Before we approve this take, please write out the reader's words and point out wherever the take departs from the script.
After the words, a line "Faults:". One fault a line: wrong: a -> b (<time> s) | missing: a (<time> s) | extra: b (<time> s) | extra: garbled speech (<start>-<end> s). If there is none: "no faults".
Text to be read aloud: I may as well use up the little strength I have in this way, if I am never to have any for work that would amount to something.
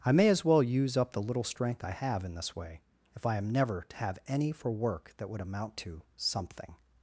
I may as well use up the little strength I have in this way, if I am never to have any for work that would amount to something.
Faults:
no faults